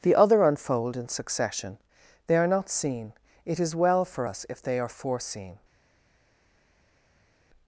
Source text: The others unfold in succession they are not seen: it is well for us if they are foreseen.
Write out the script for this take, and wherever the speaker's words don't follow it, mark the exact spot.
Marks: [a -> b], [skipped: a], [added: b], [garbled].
The [others -> other] unfold in succession they are not seen: it is well for us if they are foreseen.